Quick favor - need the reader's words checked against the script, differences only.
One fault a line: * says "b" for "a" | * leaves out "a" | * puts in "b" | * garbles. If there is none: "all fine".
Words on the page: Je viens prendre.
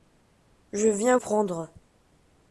all fine